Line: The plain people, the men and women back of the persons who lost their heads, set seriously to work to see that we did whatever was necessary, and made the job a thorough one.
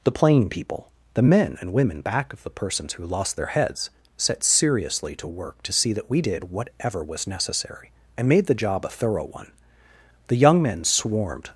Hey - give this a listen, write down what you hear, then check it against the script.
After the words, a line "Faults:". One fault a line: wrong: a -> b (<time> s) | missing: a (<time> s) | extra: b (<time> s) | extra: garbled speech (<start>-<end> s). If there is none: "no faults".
The plain people, the men and women back of the persons who lost their heads, set seriously to work to see that we did whatever was necessary, and made the job a thorough one. The young men swarmed
Faults:
extra: The young men swarmed (10.3 s)